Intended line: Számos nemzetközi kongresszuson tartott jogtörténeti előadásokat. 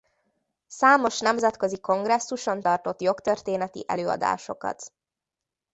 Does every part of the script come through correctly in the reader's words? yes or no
yes